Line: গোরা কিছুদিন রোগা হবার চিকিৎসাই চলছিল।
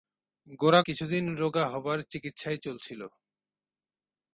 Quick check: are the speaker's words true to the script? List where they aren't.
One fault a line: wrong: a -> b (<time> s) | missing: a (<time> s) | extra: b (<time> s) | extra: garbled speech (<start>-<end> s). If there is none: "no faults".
no faults